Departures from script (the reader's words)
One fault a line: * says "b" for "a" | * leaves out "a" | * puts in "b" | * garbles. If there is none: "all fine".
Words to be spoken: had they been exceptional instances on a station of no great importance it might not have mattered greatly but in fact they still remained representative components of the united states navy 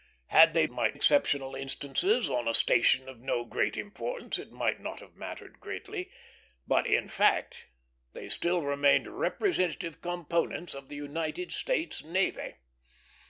* says "might" for "been"